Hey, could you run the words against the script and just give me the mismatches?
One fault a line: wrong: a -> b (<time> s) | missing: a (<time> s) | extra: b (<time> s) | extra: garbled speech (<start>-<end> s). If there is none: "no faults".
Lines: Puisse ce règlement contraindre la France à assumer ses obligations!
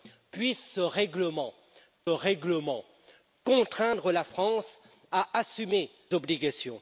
extra: règlement (2.1 s)
missing: ses (5.9 s)